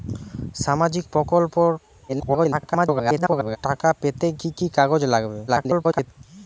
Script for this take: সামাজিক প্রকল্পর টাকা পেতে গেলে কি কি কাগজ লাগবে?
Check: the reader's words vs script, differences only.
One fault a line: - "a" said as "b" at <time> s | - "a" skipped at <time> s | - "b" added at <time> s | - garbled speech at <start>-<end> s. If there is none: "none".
- garbled speech at 2.1-3.6 s
- "গেলে" skipped at 4.3 s
- garbled speech at 5.5-6.1 s